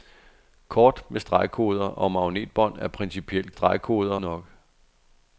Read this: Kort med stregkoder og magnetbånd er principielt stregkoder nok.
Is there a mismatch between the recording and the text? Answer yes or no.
no